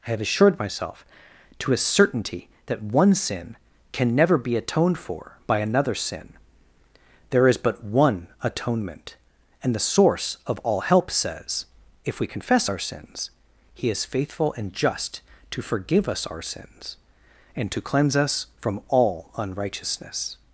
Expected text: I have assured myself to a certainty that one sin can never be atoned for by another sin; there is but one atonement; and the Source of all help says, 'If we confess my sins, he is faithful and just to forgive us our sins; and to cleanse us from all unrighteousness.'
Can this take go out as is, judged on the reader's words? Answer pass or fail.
fail